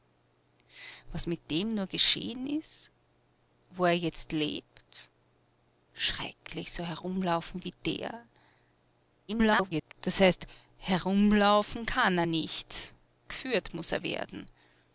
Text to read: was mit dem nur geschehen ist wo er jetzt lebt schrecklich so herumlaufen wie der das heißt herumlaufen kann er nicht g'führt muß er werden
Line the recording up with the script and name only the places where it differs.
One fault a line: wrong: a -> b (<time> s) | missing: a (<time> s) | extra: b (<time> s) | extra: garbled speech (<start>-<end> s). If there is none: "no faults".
extra: garbled speech (9.3-9.9 s)